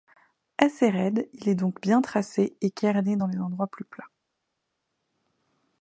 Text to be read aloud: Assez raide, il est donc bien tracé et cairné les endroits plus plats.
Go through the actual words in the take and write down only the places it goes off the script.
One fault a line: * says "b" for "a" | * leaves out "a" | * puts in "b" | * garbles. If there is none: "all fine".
* puts in "dans"